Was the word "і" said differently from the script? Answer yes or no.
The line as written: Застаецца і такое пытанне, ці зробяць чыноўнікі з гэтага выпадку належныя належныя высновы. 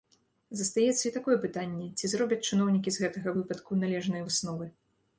no